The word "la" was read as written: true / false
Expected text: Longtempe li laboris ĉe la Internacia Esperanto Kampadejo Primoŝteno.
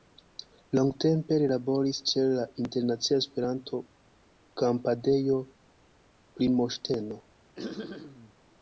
true